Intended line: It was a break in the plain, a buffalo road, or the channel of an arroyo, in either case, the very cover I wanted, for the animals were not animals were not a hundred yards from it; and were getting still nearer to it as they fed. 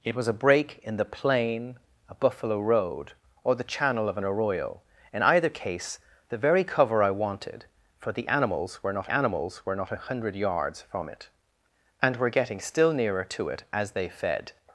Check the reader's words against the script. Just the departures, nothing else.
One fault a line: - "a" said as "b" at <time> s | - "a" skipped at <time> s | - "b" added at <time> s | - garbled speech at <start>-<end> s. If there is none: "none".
none